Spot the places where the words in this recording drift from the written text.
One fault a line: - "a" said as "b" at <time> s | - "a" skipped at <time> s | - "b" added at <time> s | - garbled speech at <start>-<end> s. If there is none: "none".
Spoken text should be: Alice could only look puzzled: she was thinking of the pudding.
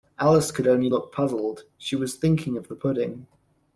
none